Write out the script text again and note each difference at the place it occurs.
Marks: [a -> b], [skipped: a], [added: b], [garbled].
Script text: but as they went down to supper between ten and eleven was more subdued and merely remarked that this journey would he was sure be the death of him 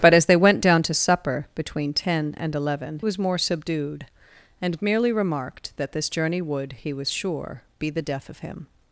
but as they went down to supper between ten and eleven was more subdued and merely remarked that this journey would he was sure be the death of him